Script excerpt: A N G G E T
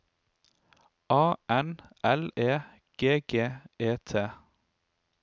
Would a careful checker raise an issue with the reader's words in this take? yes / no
yes